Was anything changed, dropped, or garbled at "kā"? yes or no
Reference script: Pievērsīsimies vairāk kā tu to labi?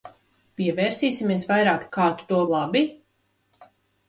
no